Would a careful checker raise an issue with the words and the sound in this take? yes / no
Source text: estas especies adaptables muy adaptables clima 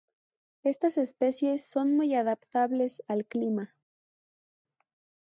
yes